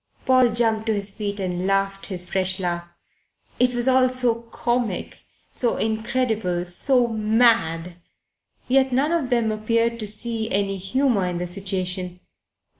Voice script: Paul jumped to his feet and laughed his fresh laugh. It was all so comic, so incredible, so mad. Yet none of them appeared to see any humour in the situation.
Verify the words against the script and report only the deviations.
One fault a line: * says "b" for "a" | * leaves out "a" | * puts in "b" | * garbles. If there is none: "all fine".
all fine